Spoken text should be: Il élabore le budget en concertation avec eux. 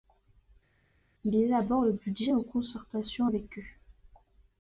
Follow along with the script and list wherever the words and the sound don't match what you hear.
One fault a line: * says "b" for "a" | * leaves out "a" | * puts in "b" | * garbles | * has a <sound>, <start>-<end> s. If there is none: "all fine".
all fine